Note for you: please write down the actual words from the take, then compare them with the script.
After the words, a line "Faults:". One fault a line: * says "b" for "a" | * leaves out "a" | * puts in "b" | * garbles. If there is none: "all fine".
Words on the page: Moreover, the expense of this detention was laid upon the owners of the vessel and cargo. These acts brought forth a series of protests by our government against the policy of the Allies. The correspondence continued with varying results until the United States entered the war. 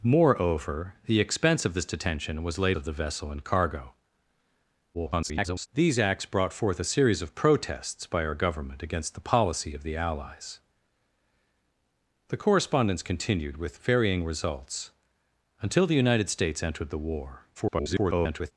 Moreover, the expense of this detention was laid of the vessel and cargo. [garbled] These acts brought forth a series of protests by our government against the policy of the Allies. The correspondence continued with varying results until the United States entered the war. [garbled]
Faults:
* leaves out "upon the owners"
* garbles
* garbles